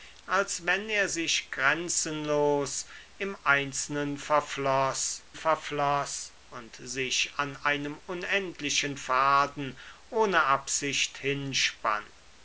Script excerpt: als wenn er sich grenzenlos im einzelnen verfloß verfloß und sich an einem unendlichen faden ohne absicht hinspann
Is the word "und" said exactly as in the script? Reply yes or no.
yes